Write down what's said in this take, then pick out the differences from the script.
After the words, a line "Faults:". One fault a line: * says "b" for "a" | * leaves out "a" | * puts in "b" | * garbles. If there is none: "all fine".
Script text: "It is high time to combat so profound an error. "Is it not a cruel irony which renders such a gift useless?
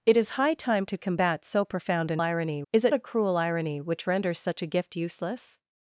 "It is high time to combat so profound an irony. "Is it a cruel irony which renders such a gift useless?
Faults:
* says "irony" for "error"
* leaves out "not"